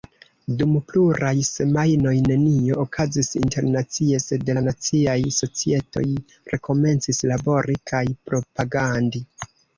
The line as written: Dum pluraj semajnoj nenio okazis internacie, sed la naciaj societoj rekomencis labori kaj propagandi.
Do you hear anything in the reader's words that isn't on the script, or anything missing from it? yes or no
no